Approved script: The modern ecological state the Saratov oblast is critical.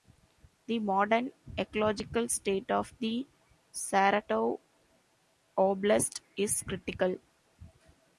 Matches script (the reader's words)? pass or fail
fail